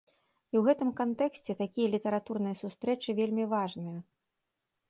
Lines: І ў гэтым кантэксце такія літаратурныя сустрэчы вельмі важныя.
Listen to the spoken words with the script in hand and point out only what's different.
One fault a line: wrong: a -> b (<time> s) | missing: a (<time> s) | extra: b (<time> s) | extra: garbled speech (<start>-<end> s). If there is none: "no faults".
no faults